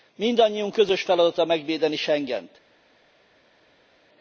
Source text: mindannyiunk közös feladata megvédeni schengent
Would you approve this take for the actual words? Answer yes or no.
yes